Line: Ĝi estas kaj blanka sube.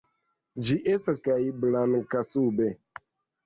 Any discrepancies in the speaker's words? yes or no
no